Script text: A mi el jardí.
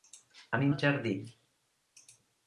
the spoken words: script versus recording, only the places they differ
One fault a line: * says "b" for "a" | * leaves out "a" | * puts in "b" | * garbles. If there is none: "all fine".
all fine